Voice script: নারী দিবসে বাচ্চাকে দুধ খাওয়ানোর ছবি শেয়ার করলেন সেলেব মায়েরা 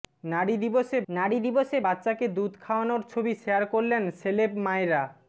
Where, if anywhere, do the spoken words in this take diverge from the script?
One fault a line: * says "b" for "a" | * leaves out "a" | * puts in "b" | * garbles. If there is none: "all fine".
* puts in "নারী দিবসে"